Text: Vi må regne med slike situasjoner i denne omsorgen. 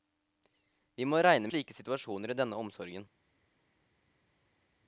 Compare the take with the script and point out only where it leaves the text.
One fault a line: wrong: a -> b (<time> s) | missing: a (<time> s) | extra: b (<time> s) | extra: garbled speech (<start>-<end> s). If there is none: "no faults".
missing: med (1.5 s)